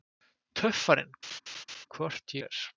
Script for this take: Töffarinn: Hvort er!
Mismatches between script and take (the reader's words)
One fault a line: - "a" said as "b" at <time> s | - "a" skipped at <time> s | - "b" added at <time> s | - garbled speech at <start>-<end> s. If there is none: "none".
none